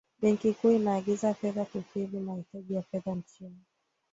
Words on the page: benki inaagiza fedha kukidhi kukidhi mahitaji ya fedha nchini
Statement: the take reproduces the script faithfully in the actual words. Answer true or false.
false